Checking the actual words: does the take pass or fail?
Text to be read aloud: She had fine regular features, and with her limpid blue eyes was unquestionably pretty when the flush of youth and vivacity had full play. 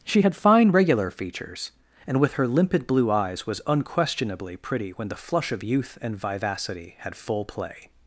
pass